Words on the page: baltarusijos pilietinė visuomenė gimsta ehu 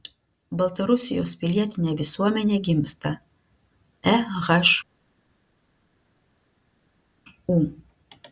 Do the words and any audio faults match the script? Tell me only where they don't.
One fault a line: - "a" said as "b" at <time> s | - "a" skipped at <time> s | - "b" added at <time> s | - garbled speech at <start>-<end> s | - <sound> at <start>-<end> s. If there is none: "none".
none